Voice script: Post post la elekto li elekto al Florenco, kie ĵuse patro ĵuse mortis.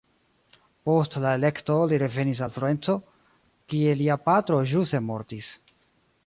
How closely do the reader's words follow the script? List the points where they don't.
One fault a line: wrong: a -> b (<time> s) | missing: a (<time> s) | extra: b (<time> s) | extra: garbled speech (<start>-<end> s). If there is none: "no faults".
missing: post (1.2 s)
wrong: elekto -> revenis (2.0 s)
wrong: ĵuse -> lia (4.0 s)